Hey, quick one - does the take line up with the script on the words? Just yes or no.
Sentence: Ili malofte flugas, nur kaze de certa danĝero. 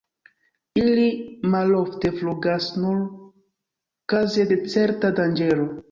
yes